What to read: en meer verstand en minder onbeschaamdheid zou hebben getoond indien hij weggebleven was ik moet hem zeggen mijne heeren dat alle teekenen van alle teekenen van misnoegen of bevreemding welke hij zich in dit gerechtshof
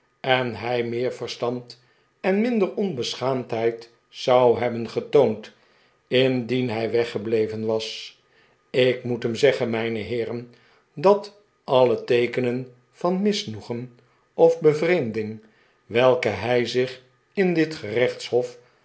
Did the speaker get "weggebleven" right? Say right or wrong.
right